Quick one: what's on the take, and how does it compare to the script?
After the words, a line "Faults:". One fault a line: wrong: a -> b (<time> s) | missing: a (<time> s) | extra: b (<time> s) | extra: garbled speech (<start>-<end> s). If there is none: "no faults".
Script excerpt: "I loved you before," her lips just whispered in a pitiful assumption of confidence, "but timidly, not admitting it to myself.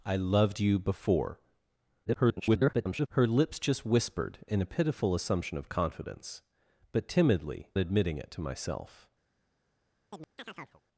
"I loved you before," [garbled] her lips just whispered in a pitiful assumption of confidence, "but timidly, admitting it to myself.
Faults:
extra: garbled speech (2.0-3.1 s)
missing: not (7.7 s)